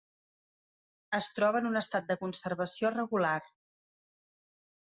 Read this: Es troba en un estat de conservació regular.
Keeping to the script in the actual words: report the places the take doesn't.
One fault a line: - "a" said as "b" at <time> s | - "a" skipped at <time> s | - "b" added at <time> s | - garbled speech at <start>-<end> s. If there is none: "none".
none